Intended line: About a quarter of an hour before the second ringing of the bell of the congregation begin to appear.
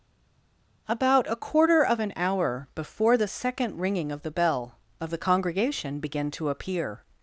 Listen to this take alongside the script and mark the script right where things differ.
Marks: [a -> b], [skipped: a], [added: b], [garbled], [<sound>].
About a quarter of an hour before the second ringing of the bell of the congregation begin to appear.